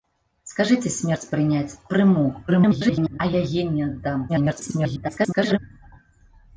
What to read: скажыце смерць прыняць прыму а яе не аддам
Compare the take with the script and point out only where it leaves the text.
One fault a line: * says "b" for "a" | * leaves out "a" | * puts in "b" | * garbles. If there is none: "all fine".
* garbles
* garbles